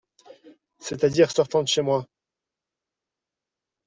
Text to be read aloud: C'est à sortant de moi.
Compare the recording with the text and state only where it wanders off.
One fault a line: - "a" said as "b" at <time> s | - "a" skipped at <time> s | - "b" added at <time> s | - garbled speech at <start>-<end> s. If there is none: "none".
- "dire" added at 1.1 s
- "chez" added at 1.7 s